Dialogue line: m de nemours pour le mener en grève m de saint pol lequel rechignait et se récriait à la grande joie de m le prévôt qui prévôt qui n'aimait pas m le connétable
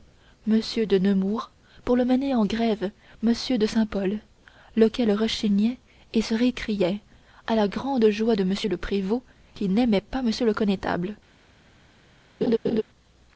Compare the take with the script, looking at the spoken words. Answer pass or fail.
fail